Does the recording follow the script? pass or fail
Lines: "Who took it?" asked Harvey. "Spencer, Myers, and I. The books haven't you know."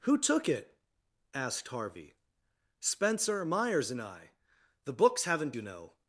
pass